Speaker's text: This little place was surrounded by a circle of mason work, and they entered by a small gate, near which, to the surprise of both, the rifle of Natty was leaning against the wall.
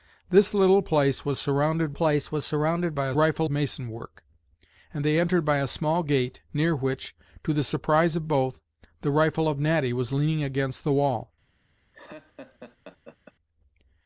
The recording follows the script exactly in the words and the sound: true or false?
false